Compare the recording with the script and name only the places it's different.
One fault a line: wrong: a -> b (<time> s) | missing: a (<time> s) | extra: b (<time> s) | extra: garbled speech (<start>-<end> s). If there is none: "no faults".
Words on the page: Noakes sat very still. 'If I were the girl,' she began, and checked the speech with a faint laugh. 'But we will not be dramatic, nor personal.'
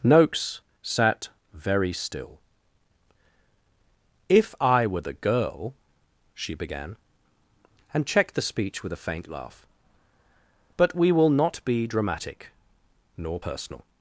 no faults